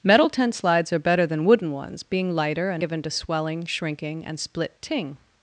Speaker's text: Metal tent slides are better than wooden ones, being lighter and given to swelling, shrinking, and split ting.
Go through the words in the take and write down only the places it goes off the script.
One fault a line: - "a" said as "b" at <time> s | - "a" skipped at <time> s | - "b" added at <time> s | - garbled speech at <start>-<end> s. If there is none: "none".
none